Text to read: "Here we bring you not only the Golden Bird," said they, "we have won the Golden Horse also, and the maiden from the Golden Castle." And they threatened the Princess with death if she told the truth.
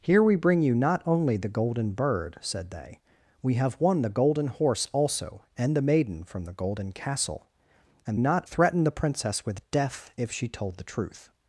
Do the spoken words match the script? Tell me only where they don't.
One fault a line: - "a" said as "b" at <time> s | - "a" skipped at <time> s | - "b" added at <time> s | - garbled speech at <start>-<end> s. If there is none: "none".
- "they" said as "not" at 8.2 s